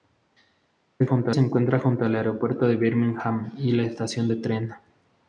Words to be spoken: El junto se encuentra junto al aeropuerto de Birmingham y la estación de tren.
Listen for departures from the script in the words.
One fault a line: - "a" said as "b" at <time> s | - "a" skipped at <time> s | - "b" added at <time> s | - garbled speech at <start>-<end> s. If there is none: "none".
none